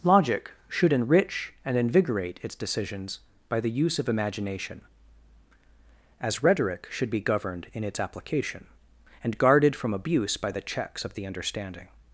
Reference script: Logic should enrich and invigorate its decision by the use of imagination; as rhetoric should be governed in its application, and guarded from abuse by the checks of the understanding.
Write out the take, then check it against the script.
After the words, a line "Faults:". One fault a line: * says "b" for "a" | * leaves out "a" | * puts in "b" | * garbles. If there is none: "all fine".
Logic should enrich and invigorate its decisions by the use of imagination; as rhetoric should be governed in its application, and guarded from abuse by the checks of the understanding.
Faults:
* says "decisions" for "decision"